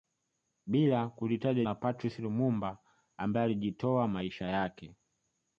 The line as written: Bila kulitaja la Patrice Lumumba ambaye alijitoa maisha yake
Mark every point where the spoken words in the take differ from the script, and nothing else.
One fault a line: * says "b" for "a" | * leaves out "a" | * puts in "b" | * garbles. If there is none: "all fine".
all fine